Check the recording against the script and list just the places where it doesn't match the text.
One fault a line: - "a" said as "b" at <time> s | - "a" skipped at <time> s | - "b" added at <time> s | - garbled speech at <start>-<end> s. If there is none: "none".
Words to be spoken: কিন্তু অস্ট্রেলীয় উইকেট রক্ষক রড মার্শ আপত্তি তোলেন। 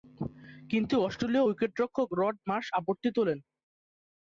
none